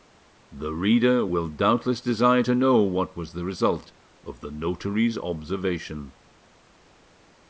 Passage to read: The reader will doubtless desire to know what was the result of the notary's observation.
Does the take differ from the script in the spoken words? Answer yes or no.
no